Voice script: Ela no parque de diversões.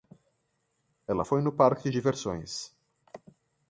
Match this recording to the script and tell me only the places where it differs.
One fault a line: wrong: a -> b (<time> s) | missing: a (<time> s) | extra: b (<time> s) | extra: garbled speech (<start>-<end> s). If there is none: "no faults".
extra: foi (1.2 s)